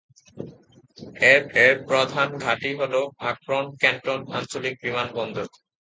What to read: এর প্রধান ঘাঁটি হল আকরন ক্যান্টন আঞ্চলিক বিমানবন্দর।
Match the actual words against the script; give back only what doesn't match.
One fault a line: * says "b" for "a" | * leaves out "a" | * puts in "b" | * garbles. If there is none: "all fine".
* puts in "এর"